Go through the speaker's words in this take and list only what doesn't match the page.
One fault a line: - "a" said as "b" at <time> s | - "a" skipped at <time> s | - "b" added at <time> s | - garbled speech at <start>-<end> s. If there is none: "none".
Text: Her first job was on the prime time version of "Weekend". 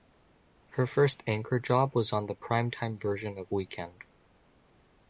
- "anchor" added at 1.3 s